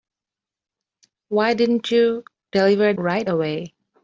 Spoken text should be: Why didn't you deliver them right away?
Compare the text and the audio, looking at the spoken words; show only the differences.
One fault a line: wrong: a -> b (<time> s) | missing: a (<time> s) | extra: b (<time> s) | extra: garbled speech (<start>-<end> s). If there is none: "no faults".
missing: them (2.9 s)